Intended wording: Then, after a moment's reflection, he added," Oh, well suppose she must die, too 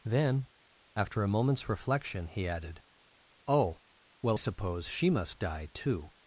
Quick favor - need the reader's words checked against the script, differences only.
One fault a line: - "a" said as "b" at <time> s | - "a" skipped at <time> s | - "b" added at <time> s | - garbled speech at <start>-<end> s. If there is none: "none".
none